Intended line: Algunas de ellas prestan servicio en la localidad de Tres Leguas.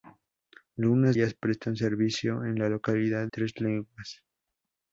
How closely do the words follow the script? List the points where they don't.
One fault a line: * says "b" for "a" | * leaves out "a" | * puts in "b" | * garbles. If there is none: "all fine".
* leaves out "de"
* leaves out "de"